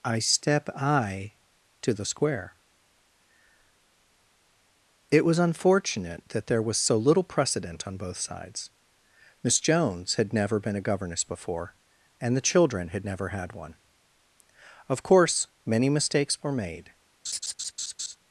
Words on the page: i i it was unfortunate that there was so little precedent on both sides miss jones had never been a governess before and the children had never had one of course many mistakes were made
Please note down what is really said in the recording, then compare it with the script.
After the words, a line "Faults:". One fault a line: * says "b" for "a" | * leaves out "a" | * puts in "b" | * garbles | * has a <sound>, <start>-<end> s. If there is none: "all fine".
i step i to the square it was unfortunate that there was so little precedent on both sides miss jones had never been a governess before and the children had never had one of course many mistakes were made
Faults:
* puts in "step"
* puts in "to the square"
* has a laugh, 17.2-18.2 s